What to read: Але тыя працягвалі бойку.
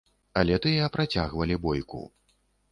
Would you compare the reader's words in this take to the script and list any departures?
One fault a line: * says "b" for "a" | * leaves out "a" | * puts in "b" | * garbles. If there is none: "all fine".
all fine